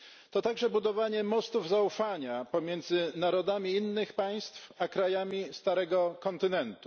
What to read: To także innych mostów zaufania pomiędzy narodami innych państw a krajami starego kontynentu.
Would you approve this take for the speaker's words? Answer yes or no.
no